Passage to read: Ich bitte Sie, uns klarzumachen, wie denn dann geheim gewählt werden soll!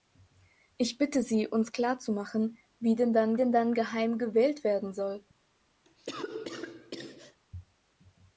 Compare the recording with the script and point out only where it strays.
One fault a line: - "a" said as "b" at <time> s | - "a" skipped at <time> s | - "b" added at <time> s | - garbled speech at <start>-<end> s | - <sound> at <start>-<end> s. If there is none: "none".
- "denn dann" added at 3.3 s
- cough at 5.8-7.4 s